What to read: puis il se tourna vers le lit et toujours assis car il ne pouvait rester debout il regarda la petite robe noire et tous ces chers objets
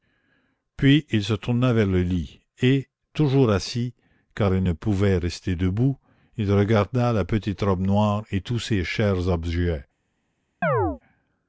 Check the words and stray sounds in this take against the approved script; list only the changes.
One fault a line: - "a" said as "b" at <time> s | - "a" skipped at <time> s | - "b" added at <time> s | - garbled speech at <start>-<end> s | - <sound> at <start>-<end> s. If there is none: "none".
- chirp at 10.6-11.0 s